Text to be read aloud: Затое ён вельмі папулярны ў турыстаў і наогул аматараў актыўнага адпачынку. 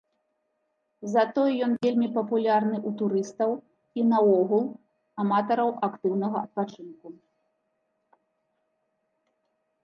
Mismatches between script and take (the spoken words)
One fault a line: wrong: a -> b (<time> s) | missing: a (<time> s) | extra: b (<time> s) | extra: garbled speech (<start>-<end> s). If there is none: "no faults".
no faults